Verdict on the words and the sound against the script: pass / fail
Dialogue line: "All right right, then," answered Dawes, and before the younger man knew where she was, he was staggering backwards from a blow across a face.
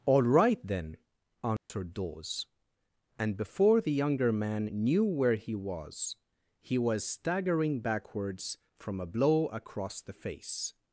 fail